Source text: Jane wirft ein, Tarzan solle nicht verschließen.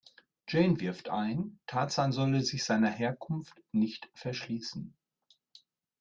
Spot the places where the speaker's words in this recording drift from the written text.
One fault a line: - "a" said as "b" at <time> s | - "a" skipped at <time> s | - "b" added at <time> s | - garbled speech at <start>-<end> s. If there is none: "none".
- "sich seiner Herkunft" added at 2.4 s